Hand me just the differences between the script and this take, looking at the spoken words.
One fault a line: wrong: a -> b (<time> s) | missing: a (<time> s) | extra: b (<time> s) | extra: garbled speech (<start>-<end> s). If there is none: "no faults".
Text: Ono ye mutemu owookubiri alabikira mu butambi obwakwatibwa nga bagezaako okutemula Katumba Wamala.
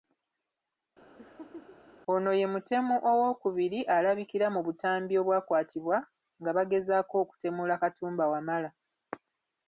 no faults